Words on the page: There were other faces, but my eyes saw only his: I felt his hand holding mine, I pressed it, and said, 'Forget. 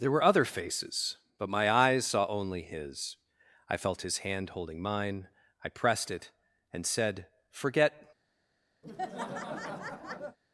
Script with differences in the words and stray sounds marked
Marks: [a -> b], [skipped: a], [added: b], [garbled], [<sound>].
There were other faces, but my eyes saw only his: I felt his hand holding mine, I pressed it, and said, 'Forget. [laugh]